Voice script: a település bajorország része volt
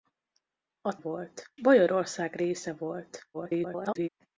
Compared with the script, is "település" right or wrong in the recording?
wrong